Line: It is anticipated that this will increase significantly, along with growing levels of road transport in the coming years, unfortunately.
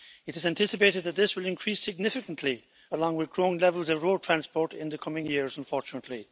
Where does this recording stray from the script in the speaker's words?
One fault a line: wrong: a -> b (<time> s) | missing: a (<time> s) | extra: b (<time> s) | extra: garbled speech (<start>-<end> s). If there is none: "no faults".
no faults